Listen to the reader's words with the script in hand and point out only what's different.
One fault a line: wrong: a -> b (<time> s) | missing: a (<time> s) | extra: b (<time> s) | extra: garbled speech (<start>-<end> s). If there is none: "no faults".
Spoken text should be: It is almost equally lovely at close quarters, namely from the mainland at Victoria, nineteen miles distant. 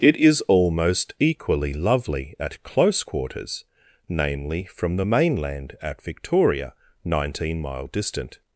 wrong: miles -> mile (7.6 s)